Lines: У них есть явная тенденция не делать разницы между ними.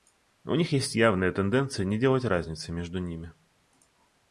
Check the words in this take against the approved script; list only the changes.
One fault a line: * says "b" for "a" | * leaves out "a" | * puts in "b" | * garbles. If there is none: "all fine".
all fine